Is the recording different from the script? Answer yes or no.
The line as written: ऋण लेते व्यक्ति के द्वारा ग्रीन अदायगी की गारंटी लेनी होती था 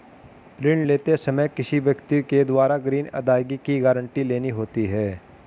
yes